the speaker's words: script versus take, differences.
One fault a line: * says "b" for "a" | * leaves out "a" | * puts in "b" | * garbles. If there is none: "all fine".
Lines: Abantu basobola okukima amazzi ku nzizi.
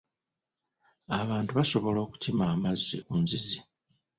all fine